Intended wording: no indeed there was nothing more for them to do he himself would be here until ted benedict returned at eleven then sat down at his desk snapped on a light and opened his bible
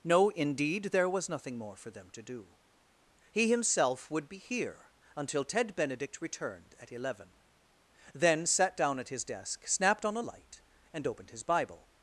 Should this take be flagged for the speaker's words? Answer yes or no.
no